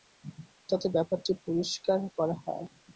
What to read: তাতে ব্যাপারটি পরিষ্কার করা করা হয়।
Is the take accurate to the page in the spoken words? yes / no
no